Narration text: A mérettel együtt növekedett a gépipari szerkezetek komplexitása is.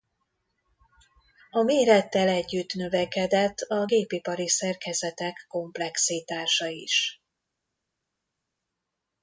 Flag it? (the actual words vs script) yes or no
no